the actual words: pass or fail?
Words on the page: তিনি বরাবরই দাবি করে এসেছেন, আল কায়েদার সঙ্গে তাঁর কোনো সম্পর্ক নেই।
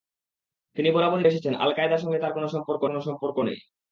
fail